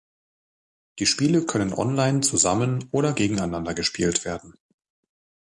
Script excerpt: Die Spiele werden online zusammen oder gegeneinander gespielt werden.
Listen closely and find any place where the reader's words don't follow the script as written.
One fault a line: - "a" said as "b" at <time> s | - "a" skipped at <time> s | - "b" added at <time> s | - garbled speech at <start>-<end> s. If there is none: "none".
- "werden" said as "können" at 1.4 s